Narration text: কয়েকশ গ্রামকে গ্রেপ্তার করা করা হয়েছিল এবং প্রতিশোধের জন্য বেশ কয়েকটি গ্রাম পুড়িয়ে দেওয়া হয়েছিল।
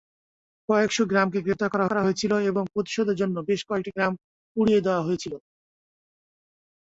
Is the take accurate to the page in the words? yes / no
yes